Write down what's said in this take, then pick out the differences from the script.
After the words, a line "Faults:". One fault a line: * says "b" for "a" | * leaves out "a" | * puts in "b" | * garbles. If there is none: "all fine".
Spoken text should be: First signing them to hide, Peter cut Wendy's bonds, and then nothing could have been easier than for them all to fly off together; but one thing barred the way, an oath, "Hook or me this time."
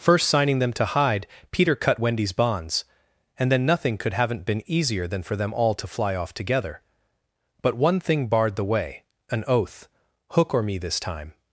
First signing them to hide, Peter cut Wendy's bonds, and then nothing could haven't been easier than for them all to fly off together; but one thing barred the way, an oath, "Hook or me this time."
Faults:
* says "haven't" for "have"